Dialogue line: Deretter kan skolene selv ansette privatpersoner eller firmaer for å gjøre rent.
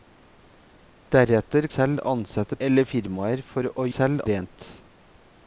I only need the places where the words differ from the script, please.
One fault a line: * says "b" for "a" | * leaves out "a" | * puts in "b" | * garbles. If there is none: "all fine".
* leaves out "kan skolene"
* leaves out "privatpersoner"
* says "selv" for "gjøre"